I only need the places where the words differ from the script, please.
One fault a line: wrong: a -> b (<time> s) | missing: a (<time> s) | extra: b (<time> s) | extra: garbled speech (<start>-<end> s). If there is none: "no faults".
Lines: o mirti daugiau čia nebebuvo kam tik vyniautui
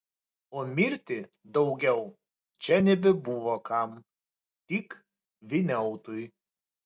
no faults